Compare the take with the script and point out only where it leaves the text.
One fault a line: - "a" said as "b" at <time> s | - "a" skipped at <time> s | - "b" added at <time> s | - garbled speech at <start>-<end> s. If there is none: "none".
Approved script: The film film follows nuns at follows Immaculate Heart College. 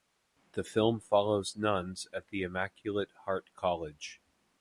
- "film" skipped at 1.0 s
- "follows" said as "the" at 2.3 s